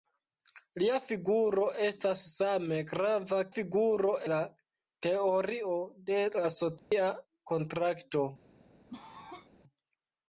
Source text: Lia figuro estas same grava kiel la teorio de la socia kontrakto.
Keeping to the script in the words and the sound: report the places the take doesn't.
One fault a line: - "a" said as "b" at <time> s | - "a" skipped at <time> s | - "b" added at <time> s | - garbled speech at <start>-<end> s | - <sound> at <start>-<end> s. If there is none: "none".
- "kiel" said as "figuro" at 3.6 s
- dropout at 6.8-6.9 s
- cough at 8.9-9.5 s